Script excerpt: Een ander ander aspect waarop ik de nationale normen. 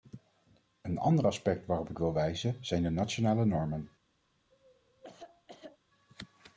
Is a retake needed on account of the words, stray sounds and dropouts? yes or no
yes